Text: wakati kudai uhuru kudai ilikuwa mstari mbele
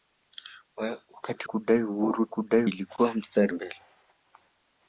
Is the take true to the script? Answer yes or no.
yes